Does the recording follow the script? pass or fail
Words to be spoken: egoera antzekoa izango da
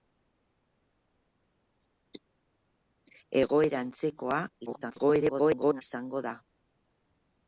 fail